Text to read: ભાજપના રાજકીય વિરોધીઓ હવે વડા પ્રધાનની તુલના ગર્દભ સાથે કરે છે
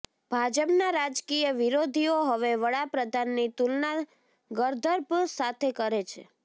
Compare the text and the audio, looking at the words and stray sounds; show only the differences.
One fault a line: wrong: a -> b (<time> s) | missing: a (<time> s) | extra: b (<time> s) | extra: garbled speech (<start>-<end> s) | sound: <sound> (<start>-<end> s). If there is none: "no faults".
no faults